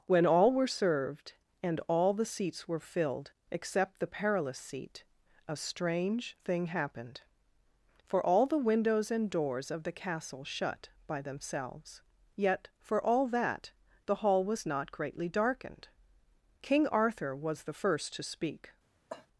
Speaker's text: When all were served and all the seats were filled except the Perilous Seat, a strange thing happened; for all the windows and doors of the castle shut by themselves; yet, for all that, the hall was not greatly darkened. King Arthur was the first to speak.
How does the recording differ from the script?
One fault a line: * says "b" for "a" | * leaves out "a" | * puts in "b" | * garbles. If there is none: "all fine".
all fine